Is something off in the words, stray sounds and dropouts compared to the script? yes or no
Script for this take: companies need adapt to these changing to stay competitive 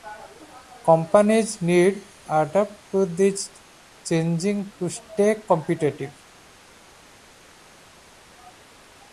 no